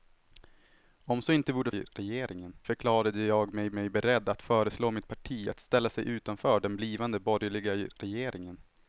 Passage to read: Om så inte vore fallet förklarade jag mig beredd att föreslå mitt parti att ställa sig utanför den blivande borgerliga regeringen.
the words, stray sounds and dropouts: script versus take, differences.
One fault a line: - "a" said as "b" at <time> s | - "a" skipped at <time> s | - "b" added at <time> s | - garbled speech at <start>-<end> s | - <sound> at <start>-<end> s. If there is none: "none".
- "fallet" said as "regeringen" at 1.7 s
- "mig" added at 3.7 s